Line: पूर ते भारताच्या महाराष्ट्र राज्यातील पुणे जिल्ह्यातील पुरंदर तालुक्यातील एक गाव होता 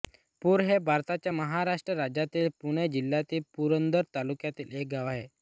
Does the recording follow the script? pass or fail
fail